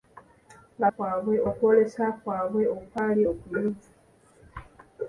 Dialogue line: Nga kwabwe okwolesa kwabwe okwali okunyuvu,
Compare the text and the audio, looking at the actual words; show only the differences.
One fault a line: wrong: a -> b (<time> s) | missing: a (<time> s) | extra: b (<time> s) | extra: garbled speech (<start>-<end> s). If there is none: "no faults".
no faults